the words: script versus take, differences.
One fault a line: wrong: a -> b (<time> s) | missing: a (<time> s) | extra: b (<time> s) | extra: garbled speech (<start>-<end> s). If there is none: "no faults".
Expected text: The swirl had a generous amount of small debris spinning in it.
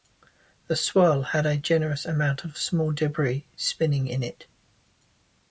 no faults